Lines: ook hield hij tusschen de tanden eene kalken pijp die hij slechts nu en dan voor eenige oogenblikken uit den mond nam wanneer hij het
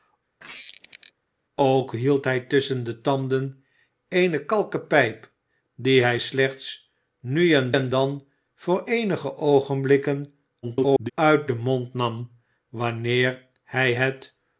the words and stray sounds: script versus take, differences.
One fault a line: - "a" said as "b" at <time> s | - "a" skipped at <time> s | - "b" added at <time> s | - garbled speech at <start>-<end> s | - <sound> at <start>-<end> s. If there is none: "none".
- squeak at 0.4-1.1 s
- "en" added at 7.7 s
- garbled speech at 10.6-11.1 s